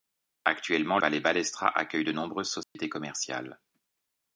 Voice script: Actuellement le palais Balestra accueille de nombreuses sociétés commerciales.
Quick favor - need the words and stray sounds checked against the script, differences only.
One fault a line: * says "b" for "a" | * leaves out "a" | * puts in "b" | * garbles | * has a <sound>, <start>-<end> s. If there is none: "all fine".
* leaves out "le"
* has a dropout, 2.6-2.8 s